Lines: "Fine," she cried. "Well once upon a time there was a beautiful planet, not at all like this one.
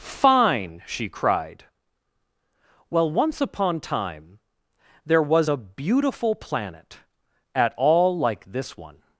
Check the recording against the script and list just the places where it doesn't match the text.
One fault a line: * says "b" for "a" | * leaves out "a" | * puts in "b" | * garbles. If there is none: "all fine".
* leaves out "a"
* leaves out "not"